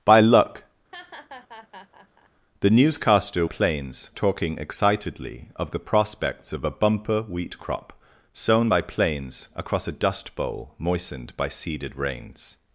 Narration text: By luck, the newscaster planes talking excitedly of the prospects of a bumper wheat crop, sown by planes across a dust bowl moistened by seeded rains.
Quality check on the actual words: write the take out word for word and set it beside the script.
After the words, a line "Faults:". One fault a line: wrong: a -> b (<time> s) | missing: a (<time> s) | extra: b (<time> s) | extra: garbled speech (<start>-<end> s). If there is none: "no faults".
By luck, the newscaster planes talking excitedly of the prospects of a bumper wheat crop, sown by planes across a dust bowl moistened by seeded rains.
Faults:
no faults